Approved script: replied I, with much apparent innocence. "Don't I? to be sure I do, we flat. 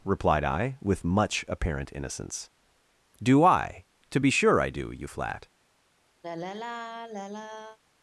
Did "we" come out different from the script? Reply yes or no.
yes